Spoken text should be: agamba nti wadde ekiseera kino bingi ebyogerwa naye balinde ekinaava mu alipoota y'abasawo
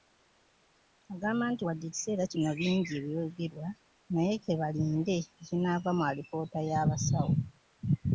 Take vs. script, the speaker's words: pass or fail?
fail